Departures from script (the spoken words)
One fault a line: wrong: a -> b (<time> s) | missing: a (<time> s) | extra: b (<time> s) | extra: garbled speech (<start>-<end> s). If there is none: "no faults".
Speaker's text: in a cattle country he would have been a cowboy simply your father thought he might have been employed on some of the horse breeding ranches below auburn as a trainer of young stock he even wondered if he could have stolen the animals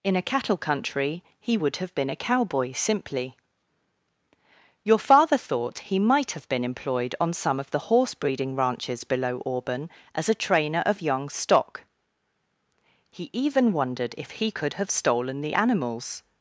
no faults